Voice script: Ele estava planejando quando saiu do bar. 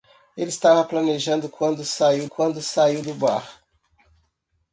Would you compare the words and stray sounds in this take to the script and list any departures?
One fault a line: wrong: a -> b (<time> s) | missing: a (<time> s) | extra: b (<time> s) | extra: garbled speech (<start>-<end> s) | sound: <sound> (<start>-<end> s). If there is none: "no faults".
extra: quando saiu (2.2 s)